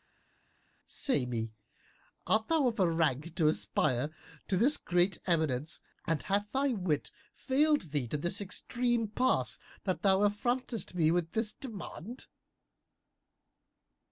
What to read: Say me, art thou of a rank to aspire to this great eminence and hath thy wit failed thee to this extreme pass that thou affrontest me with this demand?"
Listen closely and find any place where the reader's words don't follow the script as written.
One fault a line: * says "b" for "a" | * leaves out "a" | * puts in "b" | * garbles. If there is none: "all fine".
all fine